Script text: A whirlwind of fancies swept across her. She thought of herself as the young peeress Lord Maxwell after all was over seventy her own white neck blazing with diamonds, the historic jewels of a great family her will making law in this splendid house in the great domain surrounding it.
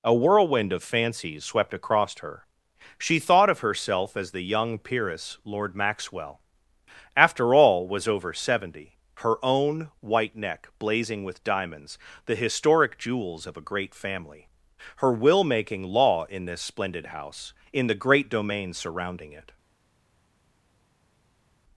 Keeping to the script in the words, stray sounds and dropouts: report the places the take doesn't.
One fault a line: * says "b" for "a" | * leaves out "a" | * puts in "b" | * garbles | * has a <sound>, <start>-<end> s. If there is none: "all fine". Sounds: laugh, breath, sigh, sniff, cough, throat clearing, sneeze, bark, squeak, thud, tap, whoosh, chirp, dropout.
all fine